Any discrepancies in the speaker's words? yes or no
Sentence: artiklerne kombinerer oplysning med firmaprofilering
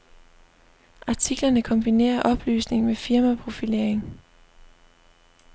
no